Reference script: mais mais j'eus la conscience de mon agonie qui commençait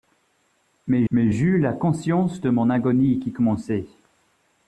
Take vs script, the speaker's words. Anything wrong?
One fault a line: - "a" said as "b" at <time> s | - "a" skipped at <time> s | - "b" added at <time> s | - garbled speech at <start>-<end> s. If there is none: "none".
none